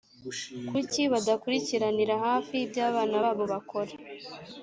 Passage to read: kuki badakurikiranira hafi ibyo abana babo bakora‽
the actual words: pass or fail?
pass